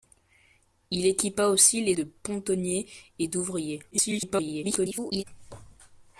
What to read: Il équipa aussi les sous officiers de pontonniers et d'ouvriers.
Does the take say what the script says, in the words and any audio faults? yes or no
no